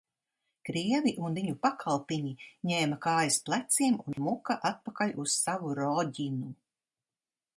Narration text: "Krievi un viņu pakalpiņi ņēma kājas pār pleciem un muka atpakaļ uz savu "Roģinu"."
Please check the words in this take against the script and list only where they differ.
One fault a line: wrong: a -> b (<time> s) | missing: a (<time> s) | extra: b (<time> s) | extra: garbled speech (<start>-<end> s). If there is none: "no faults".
missing: pār (3.4 s)